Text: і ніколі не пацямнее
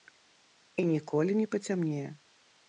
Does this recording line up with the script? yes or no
yes